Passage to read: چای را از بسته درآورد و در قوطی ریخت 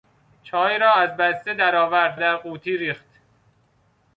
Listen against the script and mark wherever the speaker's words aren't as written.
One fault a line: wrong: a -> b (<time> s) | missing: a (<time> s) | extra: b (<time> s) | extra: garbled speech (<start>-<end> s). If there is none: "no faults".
missing: و (2.2 s)